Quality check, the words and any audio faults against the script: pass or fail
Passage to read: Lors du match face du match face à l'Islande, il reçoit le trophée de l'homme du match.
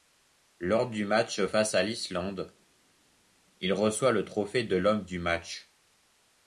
fail